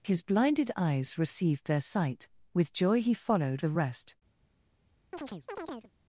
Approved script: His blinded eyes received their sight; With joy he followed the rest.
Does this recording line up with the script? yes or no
yes